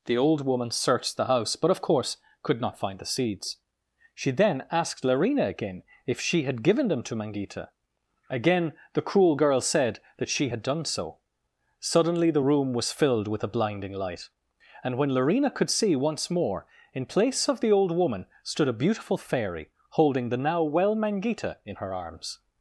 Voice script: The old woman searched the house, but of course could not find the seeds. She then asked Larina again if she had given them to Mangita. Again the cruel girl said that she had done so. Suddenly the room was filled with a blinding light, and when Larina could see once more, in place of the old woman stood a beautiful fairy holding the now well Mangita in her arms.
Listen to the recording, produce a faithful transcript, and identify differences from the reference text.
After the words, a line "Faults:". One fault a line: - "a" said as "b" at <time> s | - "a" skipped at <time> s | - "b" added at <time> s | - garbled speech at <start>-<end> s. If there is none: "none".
The old woman searched the house, but of course could not find the seeds. She then asked Larina again if she had given them to Mangita. Again the cruel girl said that she had done so. Suddenly the room was filled with a blinding light, and when Larina could see once more, in place of the old woman stood a beautiful fairy holding the now well Mangita in her arms.
Faults:
none